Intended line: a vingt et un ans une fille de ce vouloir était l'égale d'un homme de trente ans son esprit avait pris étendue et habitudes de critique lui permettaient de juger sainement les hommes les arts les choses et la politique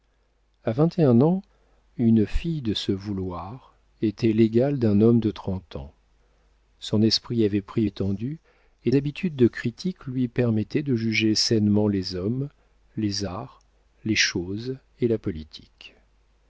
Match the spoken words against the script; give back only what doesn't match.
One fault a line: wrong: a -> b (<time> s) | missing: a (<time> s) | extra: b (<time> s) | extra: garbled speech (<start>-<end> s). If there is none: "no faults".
no faults